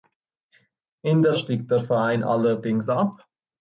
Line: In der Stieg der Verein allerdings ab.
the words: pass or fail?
pass